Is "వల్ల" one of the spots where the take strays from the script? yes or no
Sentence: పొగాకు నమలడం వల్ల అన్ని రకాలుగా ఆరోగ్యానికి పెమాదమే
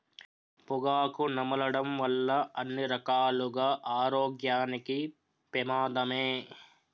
no